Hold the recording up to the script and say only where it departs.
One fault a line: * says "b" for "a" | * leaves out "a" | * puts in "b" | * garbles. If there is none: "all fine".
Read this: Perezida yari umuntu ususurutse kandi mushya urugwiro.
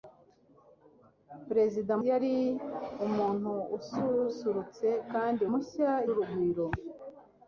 all fine